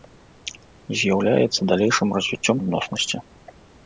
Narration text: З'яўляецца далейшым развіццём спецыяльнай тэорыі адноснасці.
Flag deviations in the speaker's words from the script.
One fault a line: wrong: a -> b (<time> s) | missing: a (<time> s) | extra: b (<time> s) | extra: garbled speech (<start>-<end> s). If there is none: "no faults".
missing: спецыяльнай тэорыі (2.6 s)